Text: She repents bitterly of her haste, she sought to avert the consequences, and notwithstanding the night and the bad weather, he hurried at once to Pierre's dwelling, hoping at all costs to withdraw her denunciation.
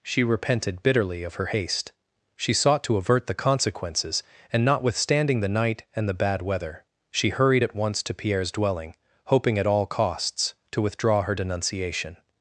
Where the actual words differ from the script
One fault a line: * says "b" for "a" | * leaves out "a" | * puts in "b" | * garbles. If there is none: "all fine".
* says "repented" for "repents"
* says "she" for "he"